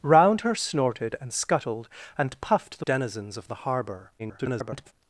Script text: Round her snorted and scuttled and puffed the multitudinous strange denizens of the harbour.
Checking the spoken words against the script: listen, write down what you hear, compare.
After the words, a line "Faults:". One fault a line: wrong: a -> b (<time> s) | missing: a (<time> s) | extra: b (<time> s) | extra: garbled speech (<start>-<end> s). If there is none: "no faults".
Round her snorted and scuttled and puffed the denizens of the harbour. [garbled]
Faults:
missing: multitudinous strange (2.9 s)
extra: garbled speech (4.2-4.9 s)